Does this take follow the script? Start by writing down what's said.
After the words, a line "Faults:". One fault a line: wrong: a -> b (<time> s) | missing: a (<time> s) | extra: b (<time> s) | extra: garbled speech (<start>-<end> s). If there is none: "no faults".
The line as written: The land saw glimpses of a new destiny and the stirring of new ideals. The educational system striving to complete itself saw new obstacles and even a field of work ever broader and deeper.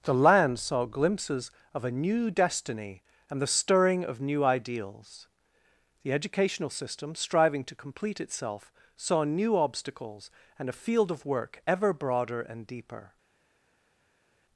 The land saw glimpses of a new destiny and the stirring of new ideals. The educational system striving to complete itself saw new obstacles and a field of work ever broader and deeper.
Faults:
missing: even (10.7 s)